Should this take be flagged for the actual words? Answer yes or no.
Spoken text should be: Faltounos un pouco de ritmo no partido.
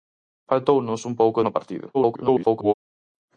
yes